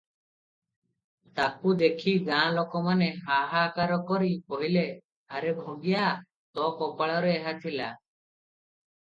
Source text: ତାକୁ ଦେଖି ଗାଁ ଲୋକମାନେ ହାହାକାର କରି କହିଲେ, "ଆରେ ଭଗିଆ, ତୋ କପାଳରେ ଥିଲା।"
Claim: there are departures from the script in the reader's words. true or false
true